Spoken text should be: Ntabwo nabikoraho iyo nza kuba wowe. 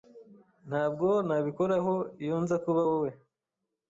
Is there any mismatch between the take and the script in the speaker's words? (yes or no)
no